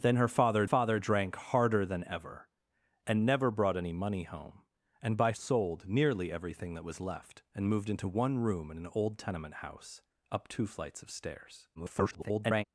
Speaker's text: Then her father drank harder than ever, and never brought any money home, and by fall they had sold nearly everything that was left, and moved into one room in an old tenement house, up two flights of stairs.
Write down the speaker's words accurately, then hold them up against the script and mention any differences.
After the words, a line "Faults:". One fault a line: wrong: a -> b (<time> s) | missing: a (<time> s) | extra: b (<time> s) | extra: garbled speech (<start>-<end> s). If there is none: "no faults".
Then her father father drank harder than ever, and never brought any money home, and by sold nearly everything that was left, and moved into one room in an old tenement house, up two flights of stairs. [garbled]
Faults:
extra: father (0.6 s)
missing: fall they had (5.3 s)
extra: garbled speech (11.8-12.6 s)